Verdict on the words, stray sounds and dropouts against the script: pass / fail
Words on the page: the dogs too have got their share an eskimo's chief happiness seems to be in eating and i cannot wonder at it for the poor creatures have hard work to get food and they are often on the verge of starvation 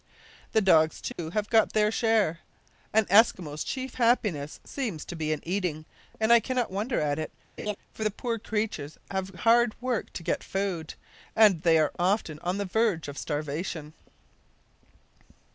fail